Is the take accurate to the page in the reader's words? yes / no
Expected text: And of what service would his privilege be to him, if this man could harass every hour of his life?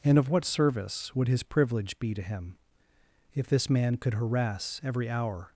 no